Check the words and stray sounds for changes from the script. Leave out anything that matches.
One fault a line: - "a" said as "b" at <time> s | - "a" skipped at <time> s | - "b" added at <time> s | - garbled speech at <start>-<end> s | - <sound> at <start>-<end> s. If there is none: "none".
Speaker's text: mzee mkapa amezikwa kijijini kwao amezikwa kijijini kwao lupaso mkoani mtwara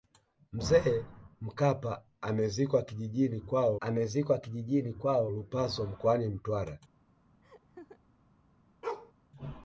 - laugh at 7.4-8.0 s
- bark at 8.8-9.1 s